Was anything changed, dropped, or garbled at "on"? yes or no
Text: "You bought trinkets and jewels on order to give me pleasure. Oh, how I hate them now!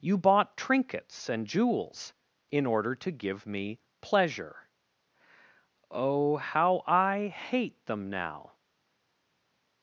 yes